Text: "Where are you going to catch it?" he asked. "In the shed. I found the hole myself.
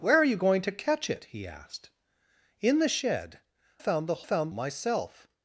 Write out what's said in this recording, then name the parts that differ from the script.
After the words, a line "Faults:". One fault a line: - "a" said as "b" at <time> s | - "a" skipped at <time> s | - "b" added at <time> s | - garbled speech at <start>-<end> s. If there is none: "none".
"Where are you going to catch it?" he asked. "In the shed. found the found myself.
Faults:
- "I" skipped at 3.4 s
- "hole" said as "found" at 4.2 s